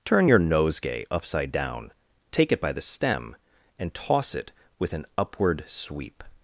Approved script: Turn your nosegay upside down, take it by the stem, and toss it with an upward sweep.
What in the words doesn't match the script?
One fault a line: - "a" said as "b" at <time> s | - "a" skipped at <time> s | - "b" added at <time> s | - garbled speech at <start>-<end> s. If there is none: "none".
none